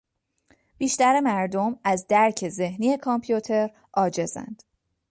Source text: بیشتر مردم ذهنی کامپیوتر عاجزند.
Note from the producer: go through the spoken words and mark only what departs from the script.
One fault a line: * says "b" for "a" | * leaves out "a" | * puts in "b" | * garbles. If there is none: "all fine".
* puts in "از درک"